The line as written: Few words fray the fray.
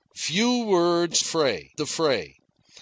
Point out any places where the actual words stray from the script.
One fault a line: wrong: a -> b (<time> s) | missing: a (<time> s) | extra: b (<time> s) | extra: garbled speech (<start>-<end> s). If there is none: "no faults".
no faults